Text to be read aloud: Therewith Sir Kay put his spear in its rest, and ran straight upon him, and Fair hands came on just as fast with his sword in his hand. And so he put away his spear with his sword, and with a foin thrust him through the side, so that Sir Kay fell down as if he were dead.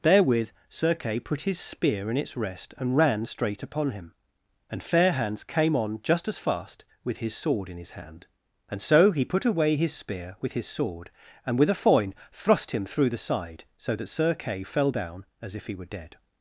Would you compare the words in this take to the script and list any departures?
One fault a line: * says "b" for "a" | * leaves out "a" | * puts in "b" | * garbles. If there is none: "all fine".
all fine